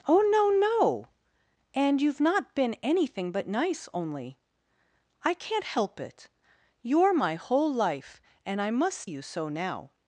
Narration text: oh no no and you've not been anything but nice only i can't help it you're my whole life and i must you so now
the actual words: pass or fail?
pass